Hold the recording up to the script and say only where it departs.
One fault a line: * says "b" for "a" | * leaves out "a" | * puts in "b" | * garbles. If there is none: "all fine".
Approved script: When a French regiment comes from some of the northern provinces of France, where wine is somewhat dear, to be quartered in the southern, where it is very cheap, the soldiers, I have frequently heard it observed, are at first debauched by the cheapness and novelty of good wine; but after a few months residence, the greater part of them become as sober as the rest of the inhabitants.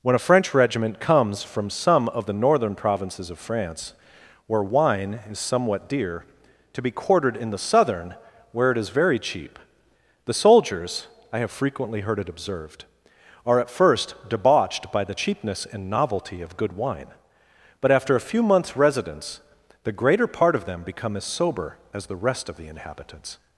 all fine